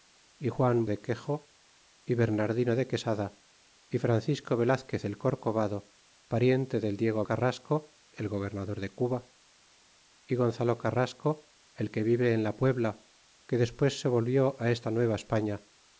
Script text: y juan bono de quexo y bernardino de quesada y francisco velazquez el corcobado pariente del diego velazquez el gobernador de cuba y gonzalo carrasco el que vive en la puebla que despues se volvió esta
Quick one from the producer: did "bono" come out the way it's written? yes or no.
no